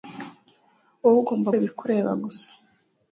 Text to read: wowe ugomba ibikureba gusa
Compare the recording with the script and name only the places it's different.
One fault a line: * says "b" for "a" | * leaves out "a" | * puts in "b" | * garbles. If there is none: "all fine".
all fine